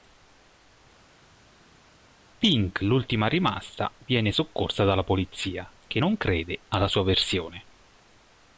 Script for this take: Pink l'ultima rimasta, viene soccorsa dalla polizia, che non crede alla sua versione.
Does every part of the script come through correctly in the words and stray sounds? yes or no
yes